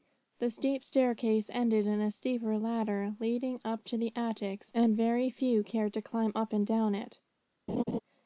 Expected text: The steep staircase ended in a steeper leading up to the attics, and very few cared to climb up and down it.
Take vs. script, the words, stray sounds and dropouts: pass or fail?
fail